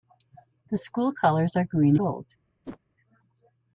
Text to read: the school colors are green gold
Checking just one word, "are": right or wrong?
right